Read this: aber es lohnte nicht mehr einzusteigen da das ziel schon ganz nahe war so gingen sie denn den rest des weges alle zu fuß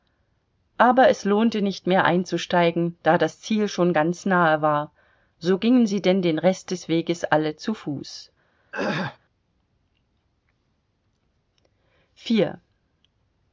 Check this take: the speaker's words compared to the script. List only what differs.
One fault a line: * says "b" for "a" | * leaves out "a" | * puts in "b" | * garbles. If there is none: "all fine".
all fine